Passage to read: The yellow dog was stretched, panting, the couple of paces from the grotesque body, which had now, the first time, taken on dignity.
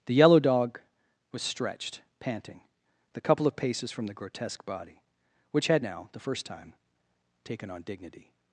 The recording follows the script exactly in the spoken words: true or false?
true